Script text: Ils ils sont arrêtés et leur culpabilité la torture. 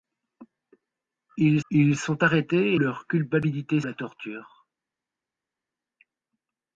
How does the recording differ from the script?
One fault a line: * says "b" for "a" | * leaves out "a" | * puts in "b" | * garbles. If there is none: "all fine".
all fine